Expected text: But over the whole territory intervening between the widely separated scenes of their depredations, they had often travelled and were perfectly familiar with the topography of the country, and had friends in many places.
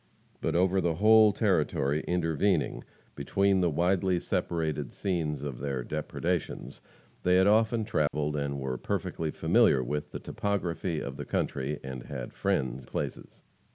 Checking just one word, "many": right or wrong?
wrong